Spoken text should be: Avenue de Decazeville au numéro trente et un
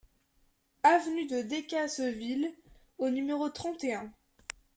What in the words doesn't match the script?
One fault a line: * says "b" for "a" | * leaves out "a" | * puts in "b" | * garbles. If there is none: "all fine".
all fine